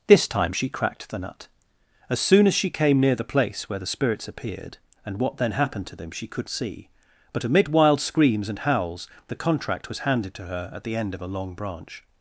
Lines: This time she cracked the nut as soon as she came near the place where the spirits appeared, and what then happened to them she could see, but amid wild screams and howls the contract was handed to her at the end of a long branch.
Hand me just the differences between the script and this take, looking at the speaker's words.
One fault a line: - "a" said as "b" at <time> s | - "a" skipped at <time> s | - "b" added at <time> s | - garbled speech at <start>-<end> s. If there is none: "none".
none